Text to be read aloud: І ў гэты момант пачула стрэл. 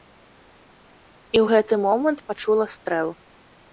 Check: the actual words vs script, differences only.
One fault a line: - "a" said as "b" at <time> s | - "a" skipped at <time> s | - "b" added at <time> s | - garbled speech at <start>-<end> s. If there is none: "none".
none